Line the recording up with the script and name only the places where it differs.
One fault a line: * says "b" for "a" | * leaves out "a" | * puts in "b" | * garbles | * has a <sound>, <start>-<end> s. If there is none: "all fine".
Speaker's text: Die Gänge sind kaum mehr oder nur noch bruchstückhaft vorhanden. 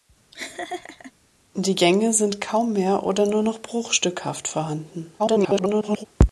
* has a laugh, 0.3-1.1 s
* garbles